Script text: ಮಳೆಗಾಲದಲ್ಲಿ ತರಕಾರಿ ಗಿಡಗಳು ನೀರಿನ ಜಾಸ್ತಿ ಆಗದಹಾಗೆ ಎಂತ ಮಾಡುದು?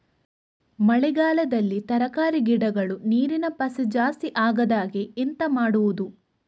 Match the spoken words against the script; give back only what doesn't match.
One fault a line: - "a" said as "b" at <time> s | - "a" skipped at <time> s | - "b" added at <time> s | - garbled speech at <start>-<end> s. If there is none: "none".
- "ಪಸೆ" added at 3.6 s